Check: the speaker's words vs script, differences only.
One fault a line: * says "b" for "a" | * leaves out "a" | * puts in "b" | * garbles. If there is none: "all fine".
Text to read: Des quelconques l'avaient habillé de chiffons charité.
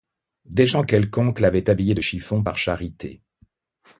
* puts in "gens"
* puts in "par"